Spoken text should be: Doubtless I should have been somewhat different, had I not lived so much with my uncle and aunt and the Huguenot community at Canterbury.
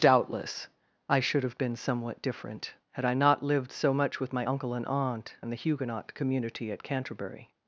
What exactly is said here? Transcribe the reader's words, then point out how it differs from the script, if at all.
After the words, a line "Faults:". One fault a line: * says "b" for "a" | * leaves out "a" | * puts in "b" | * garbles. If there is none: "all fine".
Doubtless I should have been somewhat different, had I not lived so much with my uncle and aunt and the Huguenot community at Canterbury.
Faults:
all fine